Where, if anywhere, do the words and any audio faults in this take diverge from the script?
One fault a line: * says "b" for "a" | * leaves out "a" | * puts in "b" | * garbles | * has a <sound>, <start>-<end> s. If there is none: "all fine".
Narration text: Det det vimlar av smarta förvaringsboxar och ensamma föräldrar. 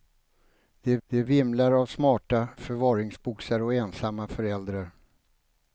all fine